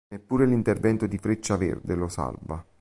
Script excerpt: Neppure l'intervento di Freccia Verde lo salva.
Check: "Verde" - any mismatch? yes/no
no